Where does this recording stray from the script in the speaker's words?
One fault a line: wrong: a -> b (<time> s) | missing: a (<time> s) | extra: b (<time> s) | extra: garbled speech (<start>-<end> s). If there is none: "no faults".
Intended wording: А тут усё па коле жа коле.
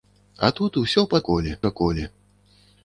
no faults